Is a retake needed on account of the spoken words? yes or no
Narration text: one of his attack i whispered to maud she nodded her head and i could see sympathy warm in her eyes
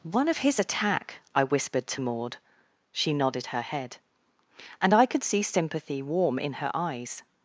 no